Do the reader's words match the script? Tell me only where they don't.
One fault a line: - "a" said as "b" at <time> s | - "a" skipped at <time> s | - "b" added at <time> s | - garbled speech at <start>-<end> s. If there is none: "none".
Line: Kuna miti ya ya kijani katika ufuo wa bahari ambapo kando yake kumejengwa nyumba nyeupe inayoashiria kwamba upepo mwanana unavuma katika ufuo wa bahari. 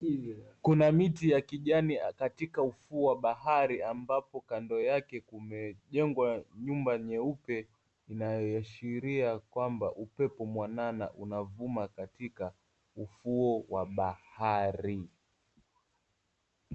- "ya" skipped at 1.4 s